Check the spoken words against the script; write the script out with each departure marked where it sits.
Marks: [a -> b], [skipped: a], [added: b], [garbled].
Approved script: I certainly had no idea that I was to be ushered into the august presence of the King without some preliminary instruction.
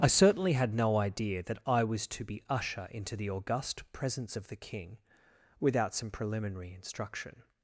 I certainly had no idea that I was to be [ushered -> usher] into the august presence of the King without some preliminary instruction.